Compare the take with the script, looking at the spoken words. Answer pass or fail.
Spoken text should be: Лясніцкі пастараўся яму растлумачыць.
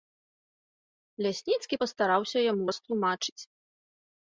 pass